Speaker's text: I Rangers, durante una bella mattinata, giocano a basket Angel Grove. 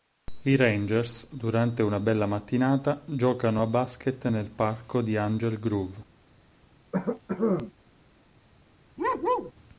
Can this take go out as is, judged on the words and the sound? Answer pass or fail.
fail